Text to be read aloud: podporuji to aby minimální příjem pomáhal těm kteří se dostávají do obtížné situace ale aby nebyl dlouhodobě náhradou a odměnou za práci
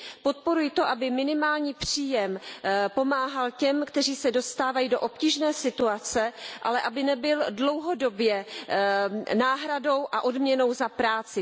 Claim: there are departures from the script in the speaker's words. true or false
false